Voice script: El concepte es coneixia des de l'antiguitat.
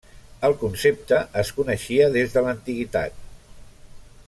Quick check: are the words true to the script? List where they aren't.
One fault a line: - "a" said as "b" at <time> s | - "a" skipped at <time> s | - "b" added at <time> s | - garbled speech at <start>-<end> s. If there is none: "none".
none